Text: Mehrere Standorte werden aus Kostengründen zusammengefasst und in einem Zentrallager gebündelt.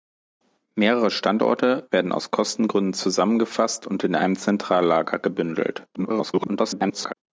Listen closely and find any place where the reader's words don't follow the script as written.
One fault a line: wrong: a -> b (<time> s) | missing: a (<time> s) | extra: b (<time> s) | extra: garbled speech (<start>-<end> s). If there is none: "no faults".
extra: garbled speech (5.9-7.1 s)